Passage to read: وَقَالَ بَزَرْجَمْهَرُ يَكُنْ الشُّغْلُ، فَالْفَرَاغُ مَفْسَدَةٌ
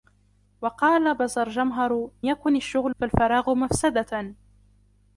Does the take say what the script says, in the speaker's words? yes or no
yes